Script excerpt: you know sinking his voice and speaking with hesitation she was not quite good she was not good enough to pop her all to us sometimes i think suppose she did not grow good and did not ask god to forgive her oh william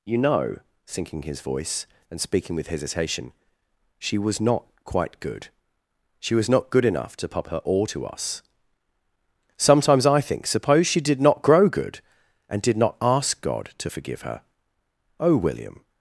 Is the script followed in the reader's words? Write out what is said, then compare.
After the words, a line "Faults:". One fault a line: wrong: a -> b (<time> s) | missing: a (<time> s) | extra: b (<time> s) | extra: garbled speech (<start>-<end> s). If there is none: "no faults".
you know sinking his voice and speaking with hesitation she was not quite good she was not good enough to pop her all to us sometimes i think suppose she did not grow good and did not ask god to forgive her oh william
Faults:
no faults